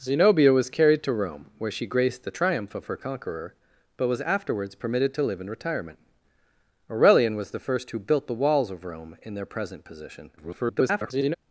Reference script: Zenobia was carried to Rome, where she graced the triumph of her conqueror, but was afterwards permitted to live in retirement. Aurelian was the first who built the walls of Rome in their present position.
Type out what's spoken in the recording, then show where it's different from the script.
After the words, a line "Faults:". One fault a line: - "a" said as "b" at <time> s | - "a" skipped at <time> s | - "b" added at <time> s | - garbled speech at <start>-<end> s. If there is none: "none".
Zenobia was carried to Rome, where she graced the triumph of her conqueror, but was afterwards permitted to live in retirement. Aurelian was the first who built the walls of Rome in their present position. [garbled]
Faults:
- garbled speech at 10.4-11.3 s